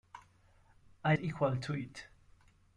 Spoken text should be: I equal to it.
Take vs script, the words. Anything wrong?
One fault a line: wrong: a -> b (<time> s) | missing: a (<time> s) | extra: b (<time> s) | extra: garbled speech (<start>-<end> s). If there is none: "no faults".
no faults